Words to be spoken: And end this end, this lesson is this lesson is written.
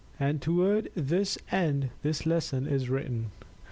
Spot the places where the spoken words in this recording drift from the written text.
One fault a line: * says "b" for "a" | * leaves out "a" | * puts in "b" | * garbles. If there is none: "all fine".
* says "toward" for "end"
* leaves out "this lesson is"